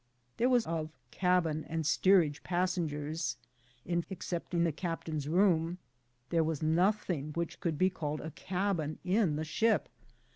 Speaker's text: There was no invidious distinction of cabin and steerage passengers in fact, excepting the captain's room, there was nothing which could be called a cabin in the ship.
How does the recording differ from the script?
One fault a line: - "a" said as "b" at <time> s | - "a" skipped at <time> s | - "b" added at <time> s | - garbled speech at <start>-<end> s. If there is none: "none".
- "no invidious distinction" skipped at 0.7 s
- "fact" skipped at 4.0 s